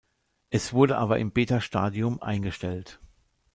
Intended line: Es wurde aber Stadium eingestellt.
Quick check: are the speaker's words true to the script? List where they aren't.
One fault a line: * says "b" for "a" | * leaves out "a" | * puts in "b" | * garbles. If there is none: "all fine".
* puts in "im Beta"